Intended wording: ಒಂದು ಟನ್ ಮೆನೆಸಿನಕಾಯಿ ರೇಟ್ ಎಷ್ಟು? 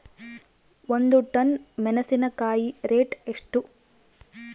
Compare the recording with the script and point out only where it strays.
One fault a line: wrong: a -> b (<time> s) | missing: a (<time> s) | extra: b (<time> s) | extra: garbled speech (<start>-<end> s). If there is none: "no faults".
no faults